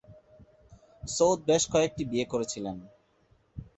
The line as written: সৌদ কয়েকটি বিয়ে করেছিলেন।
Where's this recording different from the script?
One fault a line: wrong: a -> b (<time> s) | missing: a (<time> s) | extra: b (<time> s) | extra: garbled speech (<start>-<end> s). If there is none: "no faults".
extra: বেশ (1.5 s)